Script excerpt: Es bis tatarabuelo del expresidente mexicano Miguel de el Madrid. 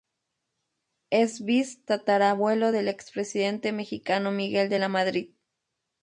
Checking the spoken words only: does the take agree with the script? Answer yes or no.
no